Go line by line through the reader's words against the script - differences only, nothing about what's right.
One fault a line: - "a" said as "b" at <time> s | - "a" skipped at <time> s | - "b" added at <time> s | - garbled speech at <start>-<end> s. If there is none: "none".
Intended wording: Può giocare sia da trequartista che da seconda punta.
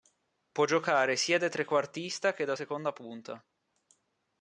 none